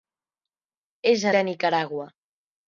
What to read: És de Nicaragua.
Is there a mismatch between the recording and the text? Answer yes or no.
no